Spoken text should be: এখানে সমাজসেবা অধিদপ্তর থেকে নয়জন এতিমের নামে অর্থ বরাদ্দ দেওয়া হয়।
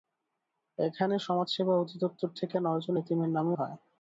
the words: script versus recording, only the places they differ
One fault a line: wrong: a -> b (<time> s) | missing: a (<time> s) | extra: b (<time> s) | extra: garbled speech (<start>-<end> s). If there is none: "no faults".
missing: অর্থ বরাদ্দ দেওয়া (3.5 s)